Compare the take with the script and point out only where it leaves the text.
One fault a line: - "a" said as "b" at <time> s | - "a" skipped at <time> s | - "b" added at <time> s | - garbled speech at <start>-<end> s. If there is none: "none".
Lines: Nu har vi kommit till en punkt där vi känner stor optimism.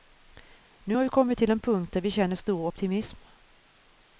none